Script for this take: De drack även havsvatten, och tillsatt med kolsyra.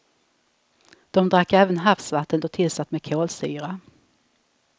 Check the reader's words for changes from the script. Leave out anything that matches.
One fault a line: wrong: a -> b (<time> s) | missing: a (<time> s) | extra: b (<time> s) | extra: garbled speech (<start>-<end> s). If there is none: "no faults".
no faults